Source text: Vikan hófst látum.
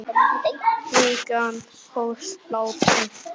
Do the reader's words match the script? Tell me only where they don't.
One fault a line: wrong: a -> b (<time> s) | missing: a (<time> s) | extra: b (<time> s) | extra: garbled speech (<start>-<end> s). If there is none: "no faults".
no faults